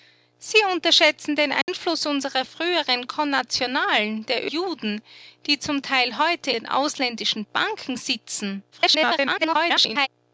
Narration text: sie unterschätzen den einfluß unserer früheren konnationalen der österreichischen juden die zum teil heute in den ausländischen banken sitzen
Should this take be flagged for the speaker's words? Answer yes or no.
yes